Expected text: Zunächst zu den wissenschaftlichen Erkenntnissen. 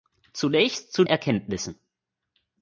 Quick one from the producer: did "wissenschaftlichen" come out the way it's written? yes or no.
no